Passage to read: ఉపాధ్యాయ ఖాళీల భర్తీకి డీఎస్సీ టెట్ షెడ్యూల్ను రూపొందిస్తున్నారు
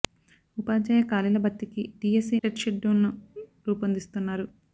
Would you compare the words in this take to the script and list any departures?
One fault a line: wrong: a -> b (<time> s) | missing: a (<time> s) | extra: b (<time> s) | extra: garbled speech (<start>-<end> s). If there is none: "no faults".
no faults